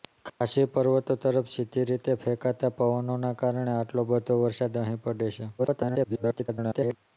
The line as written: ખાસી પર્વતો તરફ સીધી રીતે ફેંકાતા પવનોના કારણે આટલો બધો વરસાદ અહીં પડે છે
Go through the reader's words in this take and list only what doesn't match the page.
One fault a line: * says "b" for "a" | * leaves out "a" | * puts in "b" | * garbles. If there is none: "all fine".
* garbles